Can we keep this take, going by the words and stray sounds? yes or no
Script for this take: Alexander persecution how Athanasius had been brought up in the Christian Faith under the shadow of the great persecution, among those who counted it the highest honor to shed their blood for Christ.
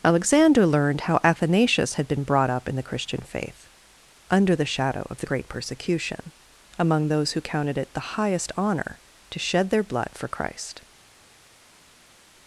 no